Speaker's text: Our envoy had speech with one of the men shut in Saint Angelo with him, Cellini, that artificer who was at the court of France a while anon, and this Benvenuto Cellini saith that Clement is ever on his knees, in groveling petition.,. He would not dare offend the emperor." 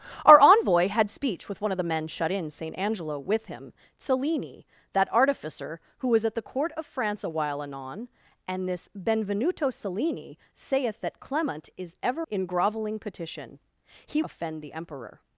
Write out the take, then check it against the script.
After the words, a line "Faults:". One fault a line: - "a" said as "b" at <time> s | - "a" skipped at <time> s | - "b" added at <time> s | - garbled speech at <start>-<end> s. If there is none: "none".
Our envoy had speech with one of the men shut in Saint Angelo with him, Cellini, that artificer who was at the court of France a while anon, and this Benvenuto Cellini saith that Clement is ever in groveling petition.,. He offend the emperor."
Faults:
- "on his knees" skipped at 12.3 s
- "would not dare" skipped at 14.2 s